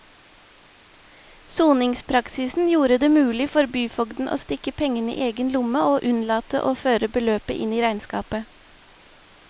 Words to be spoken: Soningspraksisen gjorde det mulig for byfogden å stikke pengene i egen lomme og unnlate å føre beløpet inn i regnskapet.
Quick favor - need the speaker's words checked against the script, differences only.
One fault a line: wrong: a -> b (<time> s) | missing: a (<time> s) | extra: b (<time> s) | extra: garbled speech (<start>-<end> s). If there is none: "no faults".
no faults